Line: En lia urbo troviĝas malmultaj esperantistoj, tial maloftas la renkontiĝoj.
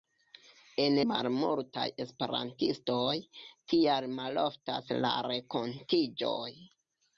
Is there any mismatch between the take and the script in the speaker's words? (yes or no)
yes